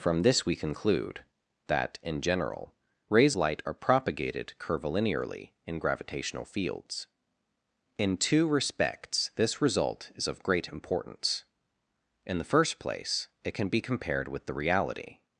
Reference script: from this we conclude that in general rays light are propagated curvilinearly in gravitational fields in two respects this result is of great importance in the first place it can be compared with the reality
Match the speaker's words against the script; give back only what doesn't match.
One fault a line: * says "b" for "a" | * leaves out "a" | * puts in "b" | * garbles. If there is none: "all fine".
all fine